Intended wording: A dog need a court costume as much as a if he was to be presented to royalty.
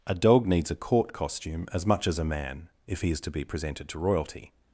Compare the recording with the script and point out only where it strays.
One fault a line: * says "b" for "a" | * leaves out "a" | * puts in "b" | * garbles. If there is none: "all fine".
* says "needs" for "need"
* puts in "man"
* says "is" for "was"